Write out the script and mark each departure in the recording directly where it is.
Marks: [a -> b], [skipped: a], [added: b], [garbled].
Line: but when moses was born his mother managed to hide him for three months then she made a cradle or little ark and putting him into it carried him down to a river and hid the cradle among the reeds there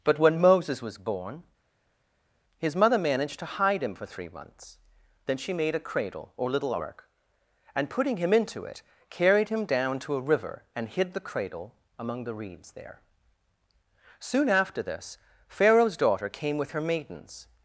but when moses was born his mother managed to hide him for three months then she made a cradle or little ark and putting him into it carried him down to a river and hid the cradle among the reeds there [added: soon after this pharaoh's daughter came with her maidens]